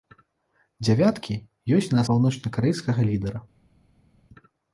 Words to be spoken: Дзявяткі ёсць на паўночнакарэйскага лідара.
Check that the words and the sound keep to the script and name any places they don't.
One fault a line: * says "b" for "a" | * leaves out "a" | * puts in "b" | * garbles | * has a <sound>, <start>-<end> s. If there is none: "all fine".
all fine